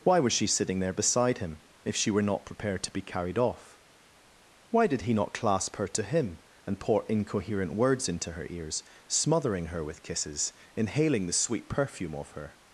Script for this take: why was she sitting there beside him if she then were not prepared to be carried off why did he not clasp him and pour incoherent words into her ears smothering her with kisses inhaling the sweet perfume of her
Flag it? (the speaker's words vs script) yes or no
yes